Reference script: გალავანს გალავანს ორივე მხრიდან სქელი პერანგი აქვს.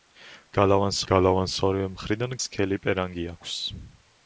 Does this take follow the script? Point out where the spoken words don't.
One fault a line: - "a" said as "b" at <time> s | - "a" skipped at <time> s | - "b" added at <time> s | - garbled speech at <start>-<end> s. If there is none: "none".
none